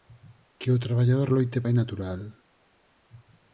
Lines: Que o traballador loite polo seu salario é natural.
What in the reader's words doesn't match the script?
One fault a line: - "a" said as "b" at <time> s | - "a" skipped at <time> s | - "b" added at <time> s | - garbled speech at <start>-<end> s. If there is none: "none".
- "polo seu salario" skipped at 1.6 s